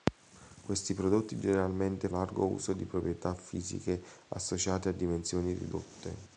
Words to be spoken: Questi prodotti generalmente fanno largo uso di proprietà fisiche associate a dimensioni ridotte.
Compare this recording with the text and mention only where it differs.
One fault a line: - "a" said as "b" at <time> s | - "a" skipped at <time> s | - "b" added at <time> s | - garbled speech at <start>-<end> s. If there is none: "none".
- "fanno" skipped at 2.1 s